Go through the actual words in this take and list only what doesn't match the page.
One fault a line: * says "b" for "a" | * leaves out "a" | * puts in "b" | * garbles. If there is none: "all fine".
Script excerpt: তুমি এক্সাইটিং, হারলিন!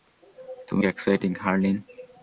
all fine